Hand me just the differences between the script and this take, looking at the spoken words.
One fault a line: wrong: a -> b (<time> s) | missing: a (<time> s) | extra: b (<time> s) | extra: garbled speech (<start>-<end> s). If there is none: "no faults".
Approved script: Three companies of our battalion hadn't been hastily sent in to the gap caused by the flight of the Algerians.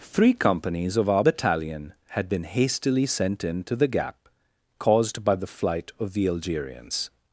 wrong: hadn't -> had (2.1 s)